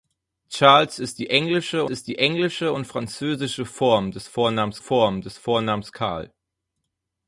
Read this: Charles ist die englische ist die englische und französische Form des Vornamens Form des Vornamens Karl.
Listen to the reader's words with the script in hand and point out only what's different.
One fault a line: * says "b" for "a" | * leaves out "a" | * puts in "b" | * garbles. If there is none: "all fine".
all fine